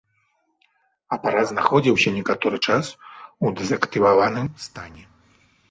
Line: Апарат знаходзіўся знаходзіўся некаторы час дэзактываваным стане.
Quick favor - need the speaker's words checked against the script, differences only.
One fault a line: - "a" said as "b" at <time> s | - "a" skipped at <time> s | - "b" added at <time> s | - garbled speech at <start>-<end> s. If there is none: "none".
- "знаходзіўся" skipped at 2.1 s
- "у" added at 3.4 s